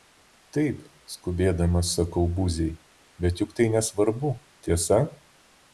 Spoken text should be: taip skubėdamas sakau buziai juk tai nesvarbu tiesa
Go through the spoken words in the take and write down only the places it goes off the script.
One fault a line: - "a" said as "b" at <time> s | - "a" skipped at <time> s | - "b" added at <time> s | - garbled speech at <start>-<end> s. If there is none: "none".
- "bet" added at 3.3 s